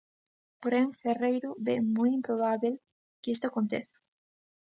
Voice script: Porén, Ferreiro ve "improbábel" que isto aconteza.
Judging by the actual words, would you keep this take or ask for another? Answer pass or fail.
fail